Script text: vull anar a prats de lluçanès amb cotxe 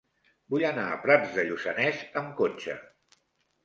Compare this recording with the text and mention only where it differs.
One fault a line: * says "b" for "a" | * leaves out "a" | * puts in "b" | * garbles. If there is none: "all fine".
all fine